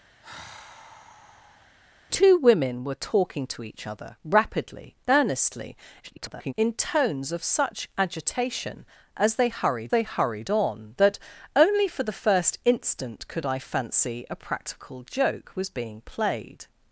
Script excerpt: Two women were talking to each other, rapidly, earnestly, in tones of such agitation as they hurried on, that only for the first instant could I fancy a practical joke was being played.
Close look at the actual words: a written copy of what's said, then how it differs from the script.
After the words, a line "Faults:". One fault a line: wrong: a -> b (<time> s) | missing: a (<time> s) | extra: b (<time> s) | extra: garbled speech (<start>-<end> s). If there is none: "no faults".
Two women were talking to each other, rapidly, earnestly, [garbled] in tones of such agitation as they hurried they hurried on, that only for the first instant could I fancy a practical joke was being played.
Faults:
extra: garbled speech (6.0-6.5 s)
extra: they hurried (9.9 s)